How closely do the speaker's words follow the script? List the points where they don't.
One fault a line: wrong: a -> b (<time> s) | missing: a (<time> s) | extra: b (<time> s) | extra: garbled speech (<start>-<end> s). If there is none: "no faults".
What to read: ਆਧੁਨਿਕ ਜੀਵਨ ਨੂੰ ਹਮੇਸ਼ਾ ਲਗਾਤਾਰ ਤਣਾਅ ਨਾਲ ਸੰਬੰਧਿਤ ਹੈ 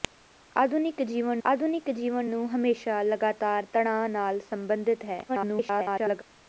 extra: ਆਧੁਨਿਕ ਜੀਵਨ (1.4 s)
extra: garbled speech (5.3-6.2 s)